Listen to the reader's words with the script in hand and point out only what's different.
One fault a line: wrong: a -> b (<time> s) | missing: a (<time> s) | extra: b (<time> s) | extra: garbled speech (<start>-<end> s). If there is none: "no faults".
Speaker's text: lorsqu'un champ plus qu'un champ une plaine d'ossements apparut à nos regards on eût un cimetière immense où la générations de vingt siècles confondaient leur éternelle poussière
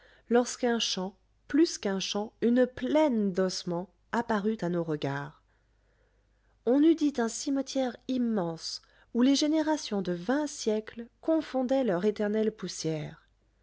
extra: dit (7.0 s)
wrong: la -> les (9.2 s)